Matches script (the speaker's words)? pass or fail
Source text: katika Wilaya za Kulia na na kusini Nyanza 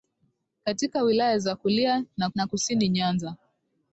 pass